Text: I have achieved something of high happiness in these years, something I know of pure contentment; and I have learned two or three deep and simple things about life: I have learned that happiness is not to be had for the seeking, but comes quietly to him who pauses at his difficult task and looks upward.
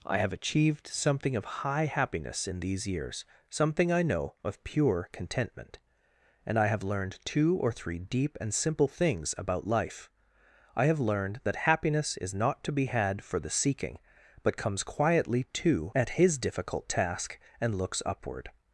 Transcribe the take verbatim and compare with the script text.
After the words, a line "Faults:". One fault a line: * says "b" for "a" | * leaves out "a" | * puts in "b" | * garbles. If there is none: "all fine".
I have achieved something of high happiness in these years, something I know of pure contentment; and I have learned two or three deep and simple things about life: I have learned that happiness is not to be had for the seeking, but comes quietly to at his difficult task and looks upward.
Faults:
* leaves out "him who pauses"